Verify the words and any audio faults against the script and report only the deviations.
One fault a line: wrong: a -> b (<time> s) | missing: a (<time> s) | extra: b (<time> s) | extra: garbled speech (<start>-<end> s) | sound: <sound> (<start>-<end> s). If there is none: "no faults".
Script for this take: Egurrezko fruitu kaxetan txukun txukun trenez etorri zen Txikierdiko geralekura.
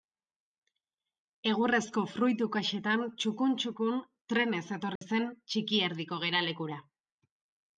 sound: dropout (5.0-5.0 s)